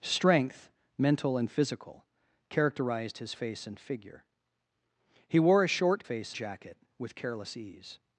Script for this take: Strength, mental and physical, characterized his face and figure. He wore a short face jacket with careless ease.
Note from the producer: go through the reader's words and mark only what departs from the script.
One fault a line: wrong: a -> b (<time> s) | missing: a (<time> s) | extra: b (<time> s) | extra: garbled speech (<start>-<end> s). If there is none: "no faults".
no faults